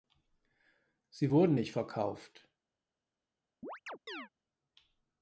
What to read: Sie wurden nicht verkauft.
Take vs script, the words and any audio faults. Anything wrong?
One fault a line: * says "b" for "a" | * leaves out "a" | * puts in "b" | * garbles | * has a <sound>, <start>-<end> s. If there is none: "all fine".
* has a chirp, 3.6-4.3 s